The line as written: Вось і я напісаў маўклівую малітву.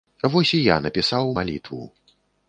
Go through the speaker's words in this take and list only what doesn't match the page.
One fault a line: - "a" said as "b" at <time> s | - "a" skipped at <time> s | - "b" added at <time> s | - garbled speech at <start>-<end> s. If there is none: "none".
- "маўклівую" skipped at 1.3 s